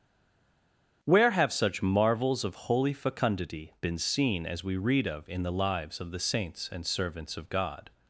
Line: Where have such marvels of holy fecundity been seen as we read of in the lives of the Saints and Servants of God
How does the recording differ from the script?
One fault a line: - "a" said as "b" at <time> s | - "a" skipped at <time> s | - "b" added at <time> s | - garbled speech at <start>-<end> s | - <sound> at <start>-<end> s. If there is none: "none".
none